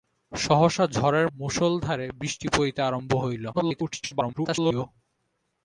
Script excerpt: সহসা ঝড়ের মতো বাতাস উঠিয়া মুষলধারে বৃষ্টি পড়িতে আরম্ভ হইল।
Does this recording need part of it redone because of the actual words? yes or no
yes